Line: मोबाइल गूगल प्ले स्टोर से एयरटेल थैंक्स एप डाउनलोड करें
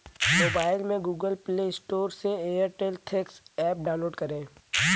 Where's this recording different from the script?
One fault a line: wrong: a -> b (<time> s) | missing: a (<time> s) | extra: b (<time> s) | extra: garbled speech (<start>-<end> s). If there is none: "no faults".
extra: में (0.8 s)